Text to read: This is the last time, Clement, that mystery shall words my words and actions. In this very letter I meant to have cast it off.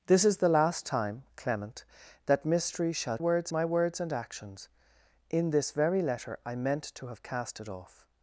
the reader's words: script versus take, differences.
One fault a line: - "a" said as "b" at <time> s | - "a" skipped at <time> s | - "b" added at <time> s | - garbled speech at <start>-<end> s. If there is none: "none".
none